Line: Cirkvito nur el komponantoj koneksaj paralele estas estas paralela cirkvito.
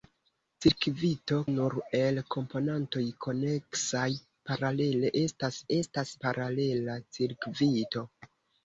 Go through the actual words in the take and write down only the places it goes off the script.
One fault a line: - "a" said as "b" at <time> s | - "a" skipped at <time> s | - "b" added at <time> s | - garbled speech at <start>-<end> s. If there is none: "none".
none